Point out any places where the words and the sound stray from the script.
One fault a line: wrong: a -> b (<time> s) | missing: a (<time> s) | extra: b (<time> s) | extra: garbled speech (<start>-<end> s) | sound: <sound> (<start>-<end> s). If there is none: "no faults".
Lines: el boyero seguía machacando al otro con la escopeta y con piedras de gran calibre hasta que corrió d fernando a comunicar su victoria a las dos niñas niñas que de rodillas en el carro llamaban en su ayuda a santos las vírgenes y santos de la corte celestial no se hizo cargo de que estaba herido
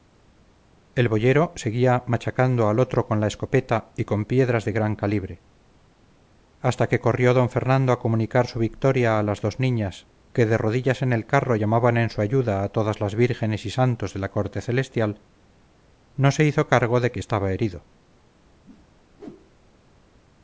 missing: niñas (10.1 s)
wrong: santos -> todas (12.7 s)
sound: whoosh (18.6-19.7 s)